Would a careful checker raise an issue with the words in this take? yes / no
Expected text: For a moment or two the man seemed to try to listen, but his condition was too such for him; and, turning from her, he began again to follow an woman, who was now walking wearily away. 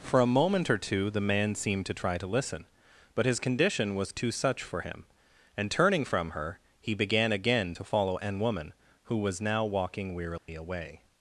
no